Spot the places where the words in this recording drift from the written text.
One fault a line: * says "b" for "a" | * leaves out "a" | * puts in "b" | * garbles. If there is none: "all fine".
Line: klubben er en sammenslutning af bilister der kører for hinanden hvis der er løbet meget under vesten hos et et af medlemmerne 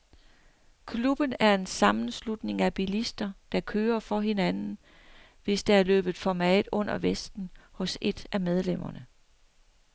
* puts in "for"
* leaves out "et"